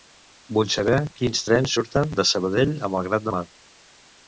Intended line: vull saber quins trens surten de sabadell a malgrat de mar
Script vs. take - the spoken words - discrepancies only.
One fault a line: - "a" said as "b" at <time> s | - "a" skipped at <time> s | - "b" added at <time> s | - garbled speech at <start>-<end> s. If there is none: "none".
none